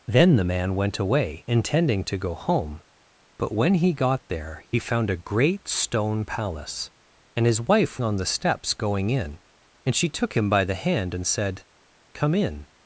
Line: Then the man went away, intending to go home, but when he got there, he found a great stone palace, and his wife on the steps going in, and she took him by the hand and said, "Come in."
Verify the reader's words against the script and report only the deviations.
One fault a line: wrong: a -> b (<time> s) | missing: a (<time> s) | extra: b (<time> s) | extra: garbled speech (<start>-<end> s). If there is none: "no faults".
no faults